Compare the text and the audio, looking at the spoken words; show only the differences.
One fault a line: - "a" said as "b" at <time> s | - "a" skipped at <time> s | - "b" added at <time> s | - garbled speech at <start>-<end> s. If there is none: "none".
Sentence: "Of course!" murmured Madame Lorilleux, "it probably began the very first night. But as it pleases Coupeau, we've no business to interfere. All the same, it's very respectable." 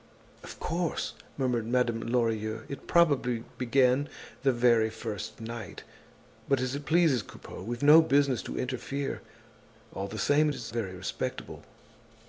none